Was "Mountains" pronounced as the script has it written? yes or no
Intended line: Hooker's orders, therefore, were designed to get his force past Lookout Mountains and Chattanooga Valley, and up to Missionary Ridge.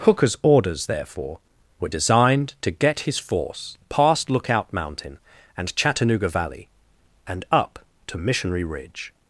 no